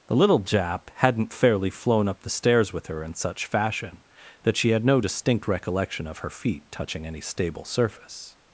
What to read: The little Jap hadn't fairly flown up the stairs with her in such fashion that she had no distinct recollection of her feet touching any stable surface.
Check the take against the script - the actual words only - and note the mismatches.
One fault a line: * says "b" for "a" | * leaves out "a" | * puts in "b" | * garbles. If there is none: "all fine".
all fine